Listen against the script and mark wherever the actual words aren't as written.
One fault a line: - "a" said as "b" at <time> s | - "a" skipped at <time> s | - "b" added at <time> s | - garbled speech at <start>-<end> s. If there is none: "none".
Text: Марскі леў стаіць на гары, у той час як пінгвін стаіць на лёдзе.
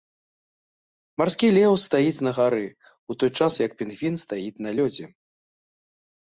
none